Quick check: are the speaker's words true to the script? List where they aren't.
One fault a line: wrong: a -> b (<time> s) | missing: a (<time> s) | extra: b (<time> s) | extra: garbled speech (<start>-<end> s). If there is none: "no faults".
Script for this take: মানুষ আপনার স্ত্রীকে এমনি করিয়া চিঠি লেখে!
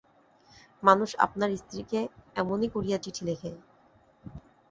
no faults